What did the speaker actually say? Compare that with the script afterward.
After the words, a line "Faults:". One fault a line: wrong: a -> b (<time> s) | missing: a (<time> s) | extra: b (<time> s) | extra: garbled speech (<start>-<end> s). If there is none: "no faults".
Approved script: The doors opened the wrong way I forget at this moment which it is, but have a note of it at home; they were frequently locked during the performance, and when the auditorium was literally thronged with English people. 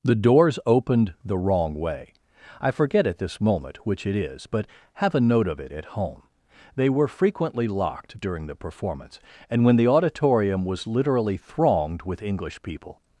The doors opened the wrong way I forget at this moment which it is, but have a note of it at home; they were frequently locked during the performance, and when the auditorium was literally thronged with English people.
Faults:
no faults